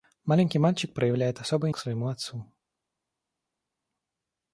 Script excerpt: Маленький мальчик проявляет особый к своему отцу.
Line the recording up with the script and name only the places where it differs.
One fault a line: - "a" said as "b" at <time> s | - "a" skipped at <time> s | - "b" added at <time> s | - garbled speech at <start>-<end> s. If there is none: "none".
none